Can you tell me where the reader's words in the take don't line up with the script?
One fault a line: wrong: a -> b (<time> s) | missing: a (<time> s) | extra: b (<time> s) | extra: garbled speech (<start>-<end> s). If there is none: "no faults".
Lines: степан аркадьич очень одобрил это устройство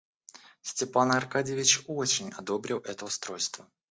no faults